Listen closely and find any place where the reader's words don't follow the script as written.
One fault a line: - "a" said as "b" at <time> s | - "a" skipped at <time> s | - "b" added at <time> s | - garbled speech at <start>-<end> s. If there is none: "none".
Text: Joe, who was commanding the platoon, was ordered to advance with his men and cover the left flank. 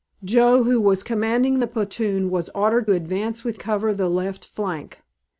- "to" skipped at 2.9 s
- "his men and" skipped at 3.6 s